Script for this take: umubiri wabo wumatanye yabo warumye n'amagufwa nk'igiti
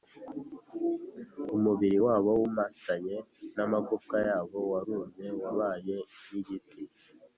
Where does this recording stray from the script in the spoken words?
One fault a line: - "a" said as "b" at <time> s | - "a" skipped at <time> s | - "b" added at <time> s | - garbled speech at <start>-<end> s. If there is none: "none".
- "n'amagufwa" added at 3.6 s
- "n'amagufwa" said as "wabaye" at 5.4 s